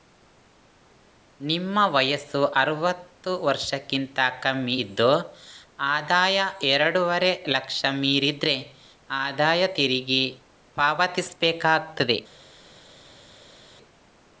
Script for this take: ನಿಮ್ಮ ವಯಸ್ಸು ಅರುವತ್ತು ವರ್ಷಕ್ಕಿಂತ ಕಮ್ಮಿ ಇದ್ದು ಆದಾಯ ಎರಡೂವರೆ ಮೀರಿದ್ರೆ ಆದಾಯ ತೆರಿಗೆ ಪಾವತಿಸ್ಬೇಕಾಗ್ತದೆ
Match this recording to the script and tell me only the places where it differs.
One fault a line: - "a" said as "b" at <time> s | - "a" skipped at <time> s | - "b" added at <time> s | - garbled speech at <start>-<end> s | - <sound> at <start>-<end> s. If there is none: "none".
- "ಲಕ್ಷ" added at 7.5 s